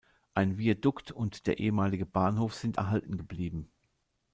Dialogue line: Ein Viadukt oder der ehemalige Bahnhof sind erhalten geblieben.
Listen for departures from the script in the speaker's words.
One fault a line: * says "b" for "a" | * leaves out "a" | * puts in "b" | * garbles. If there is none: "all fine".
* says "und" for "oder"